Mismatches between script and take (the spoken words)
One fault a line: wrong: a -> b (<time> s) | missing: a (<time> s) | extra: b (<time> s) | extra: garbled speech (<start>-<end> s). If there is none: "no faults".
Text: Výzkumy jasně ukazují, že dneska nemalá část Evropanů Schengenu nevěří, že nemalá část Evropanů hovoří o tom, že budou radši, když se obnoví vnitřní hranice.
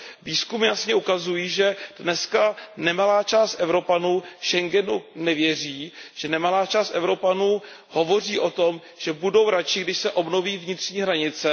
no faults